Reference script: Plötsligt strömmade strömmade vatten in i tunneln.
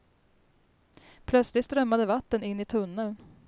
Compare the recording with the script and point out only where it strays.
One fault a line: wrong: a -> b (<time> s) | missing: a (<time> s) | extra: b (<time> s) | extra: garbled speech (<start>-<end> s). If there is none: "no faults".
missing: strömmade (2.1 s)